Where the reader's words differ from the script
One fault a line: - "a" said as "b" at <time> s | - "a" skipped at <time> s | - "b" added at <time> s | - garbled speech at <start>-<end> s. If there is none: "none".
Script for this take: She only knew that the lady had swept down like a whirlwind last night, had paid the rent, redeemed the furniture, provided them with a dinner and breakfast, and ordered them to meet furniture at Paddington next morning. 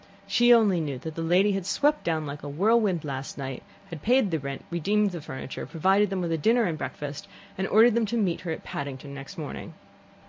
- "furniture" said as "her" at 8.4 s